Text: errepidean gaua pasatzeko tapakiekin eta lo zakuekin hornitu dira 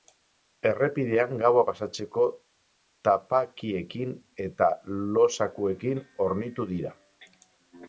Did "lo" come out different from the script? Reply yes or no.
no